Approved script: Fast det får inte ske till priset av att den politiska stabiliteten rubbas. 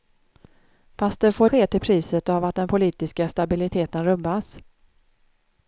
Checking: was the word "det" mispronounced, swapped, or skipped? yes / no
no